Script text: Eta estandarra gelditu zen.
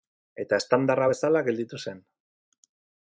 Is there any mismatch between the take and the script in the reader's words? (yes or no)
yes